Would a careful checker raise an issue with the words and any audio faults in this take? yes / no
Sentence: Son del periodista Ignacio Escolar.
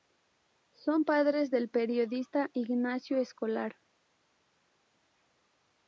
yes